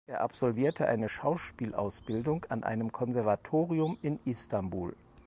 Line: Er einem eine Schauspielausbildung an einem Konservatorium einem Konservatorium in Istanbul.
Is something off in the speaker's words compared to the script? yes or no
yes